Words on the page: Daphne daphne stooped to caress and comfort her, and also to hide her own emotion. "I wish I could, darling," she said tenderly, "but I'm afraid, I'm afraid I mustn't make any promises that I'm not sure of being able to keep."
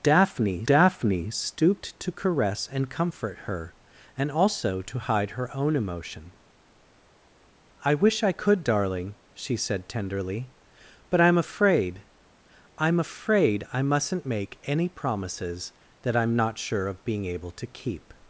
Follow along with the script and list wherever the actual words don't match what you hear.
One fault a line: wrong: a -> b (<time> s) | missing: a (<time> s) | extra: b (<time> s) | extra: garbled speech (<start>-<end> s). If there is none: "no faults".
no faults